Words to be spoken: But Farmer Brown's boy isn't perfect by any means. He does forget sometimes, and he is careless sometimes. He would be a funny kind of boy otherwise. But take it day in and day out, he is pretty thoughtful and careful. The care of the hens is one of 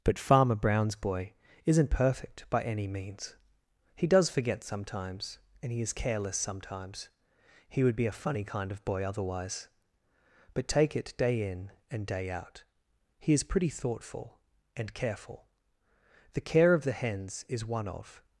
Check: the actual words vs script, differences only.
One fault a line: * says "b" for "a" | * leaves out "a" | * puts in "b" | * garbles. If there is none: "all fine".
all fine